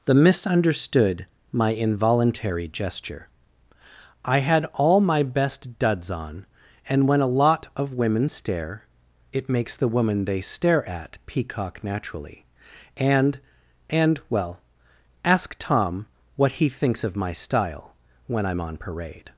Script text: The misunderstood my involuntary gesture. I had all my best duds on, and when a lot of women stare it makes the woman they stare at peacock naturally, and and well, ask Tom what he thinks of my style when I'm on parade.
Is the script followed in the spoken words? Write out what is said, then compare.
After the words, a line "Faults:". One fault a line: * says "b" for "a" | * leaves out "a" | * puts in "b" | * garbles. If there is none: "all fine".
The misunderstood my involuntary gesture. I had all my best duds on, and when a lot of women stare it makes the woman they stare at peacock naturally, and and well, ask Tom what he thinks of my style when I'm on parade.
Faults:
all fine